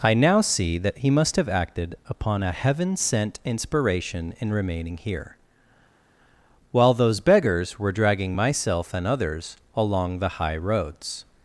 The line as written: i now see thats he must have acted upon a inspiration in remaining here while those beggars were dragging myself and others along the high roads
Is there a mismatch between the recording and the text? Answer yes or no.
yes